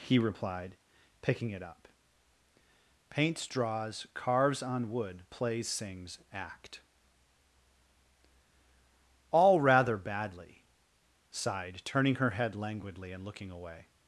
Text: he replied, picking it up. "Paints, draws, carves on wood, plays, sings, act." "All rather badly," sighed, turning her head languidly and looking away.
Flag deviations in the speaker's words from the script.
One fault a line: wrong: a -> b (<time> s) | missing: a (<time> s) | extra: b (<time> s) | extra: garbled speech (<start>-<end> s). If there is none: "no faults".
no faults